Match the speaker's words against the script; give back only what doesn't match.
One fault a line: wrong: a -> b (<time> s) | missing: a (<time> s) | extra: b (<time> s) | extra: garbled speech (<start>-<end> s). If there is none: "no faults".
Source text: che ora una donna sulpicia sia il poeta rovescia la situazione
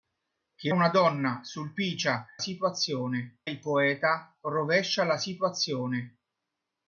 missing: ora (0.7 s)
wrong: sia -> situazione (2.4 s)